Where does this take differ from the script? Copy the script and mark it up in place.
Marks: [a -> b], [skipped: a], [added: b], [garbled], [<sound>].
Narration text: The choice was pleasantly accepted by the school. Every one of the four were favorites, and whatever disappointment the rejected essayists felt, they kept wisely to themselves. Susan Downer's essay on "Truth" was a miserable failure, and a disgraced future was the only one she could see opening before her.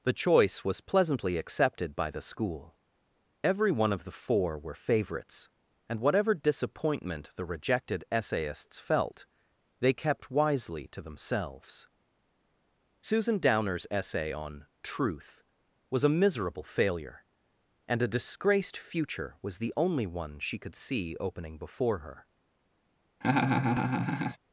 The choice was pleasantly accepted by the school. Every one of the four were favorites, and whatever disappointment the rejected essayists felt, they kept wisely to themselves. Susan Downer's essay on "Truth" was a miserable failure, and a disgraced future was the only one she could see opening before her. [laugh]